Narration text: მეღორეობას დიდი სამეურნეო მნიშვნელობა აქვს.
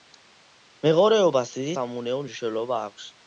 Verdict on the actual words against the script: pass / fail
pass